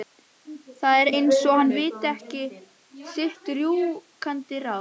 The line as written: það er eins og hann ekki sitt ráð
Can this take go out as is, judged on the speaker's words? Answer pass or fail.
fail